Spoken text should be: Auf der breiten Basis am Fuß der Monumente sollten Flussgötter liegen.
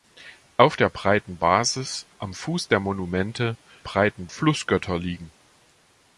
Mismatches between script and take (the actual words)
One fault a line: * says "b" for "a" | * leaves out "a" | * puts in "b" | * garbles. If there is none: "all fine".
* says "breiten" for "sollten"